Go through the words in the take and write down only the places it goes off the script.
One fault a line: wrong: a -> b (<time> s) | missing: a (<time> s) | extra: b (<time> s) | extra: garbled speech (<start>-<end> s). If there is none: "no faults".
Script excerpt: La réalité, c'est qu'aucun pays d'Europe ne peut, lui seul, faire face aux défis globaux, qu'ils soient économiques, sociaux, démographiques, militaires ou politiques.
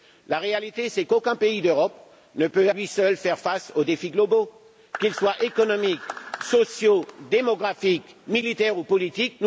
no faults